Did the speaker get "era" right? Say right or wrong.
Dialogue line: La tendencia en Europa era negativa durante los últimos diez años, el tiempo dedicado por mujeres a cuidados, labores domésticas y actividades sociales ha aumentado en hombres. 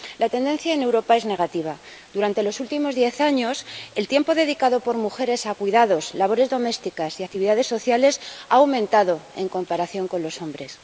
wrong